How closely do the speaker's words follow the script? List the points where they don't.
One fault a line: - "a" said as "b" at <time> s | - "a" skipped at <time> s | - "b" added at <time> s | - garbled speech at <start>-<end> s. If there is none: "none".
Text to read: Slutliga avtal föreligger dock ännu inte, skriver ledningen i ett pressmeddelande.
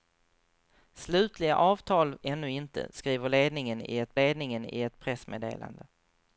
- "föreligger dock" skipped at 2.2 s
- "ledningen i ett" added at 4.1 s